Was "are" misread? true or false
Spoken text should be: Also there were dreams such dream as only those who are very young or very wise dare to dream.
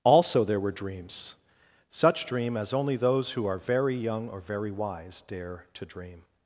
false